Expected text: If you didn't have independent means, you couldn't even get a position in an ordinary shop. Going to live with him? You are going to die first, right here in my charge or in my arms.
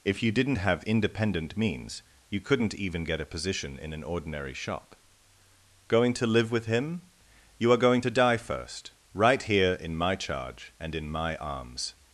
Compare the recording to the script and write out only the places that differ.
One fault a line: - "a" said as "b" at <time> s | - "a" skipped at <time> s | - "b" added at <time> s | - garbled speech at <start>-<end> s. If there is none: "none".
- "or" said as "and" at 10.8 s